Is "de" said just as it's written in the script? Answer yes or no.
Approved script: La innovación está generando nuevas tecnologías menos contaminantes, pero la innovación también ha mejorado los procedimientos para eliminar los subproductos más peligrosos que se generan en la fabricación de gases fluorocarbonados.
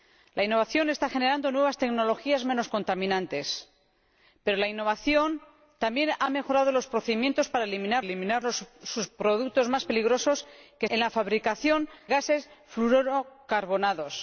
no